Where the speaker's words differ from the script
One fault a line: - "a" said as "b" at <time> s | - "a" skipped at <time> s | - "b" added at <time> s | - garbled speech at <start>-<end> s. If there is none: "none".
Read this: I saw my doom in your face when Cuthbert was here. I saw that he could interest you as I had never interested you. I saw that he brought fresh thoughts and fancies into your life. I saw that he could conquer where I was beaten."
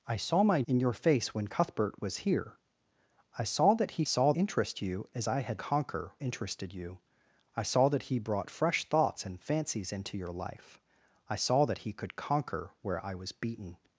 - "doom" skipped at 0.6 s
- "could" said as "saw" at 4.0 s
- "never" said as "conquer" at 5.6 s